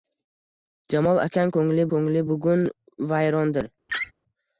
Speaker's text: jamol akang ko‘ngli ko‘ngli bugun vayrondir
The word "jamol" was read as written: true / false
true